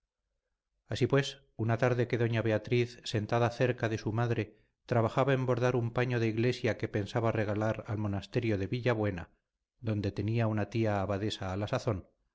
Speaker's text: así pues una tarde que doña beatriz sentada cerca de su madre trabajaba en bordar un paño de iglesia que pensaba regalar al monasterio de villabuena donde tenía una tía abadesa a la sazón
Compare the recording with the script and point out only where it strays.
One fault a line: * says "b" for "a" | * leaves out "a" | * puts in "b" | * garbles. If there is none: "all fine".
all fine